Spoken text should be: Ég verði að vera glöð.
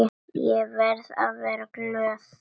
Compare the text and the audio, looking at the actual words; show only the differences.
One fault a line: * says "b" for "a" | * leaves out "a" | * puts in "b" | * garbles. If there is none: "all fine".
all fine